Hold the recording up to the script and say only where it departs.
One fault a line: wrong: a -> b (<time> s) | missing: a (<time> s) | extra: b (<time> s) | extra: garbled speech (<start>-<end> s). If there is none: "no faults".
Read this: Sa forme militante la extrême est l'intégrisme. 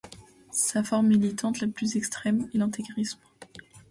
extra: plus (1.7 s)